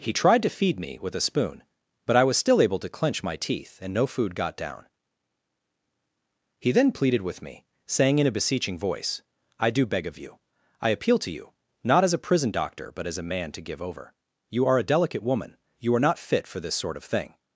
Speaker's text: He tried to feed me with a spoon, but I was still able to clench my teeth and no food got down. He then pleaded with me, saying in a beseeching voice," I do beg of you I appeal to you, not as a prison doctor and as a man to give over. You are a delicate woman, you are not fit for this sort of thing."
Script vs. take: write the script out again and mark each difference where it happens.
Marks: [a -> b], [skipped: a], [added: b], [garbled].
He tried to feed me with a spoon, but I was still able to clench my teeth and no food got down. He then pleaded with me, saying in a beseeching voice," I do beg of you I appeal to you, not as a prison doctor [and -> but] as a man to give over. You are a delicate woman, you are not fit for this sort of thing."